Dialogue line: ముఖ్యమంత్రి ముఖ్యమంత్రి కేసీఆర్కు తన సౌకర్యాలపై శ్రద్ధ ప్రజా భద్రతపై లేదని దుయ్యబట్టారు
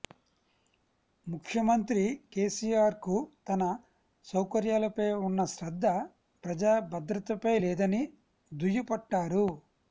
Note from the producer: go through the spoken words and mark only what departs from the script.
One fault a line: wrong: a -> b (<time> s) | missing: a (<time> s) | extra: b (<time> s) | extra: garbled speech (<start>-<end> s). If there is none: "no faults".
missing: ముఖ్యమంత్రి (2.0 s)
extra: ఉన్న (5.3 s)